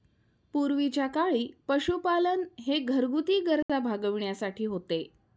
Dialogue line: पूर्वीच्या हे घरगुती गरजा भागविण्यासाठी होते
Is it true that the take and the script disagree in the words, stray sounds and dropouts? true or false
true